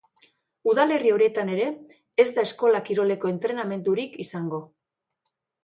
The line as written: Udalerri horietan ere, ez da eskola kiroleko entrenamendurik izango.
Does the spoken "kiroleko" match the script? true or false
true